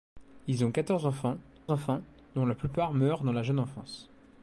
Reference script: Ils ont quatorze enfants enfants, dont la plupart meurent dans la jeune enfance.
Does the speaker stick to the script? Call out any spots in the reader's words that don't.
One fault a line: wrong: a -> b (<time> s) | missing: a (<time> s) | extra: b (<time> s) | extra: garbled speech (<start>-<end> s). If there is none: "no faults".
no faults